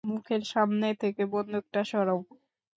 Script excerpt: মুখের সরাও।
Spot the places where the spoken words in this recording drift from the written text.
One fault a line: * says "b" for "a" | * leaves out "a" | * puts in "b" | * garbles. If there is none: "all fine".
* puts in "সামনে থেকে বন্দুকটা"